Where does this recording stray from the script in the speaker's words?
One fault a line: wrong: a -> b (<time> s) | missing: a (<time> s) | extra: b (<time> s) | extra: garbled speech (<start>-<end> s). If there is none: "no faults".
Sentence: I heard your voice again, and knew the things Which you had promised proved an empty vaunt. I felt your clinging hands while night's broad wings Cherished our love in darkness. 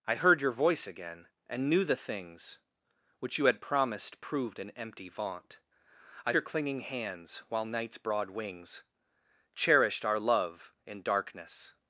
missing: felt (6.3 s)